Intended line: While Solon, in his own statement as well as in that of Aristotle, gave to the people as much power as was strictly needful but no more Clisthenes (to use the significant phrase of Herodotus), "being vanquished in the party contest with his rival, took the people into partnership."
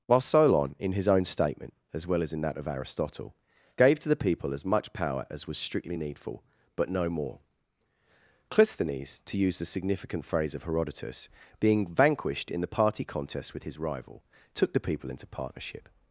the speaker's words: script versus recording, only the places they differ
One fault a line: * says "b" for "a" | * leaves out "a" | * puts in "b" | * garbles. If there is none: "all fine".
all fine